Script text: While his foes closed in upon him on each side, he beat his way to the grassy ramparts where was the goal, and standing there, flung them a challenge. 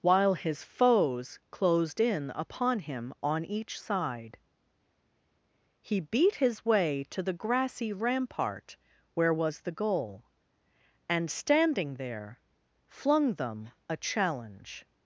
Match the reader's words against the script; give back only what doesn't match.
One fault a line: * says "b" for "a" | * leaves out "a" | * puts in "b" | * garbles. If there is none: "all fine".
* says "rampart" for "ramparts"